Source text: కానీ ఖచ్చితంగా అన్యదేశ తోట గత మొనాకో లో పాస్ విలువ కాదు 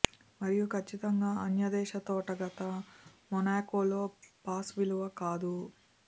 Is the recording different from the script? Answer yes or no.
yes